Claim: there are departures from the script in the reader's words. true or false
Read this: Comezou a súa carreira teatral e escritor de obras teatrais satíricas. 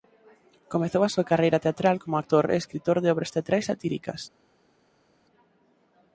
true